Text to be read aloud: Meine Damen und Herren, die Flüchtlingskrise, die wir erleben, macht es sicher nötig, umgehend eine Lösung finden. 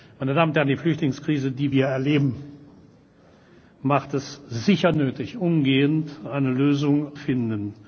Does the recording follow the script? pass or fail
pass